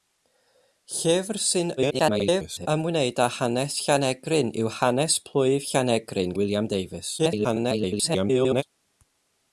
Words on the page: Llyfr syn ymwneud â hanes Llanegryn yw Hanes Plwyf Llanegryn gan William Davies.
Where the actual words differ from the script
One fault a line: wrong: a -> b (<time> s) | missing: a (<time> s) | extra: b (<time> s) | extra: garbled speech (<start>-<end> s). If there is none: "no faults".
extra: garbled speech (1.8-2.7 s)
missing: gan (6.4 s)
extra: garbled speech (7.2-8.6 s)